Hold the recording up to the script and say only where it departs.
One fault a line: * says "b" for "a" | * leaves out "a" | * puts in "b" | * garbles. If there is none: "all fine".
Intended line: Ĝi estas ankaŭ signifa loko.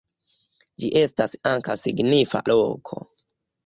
all fine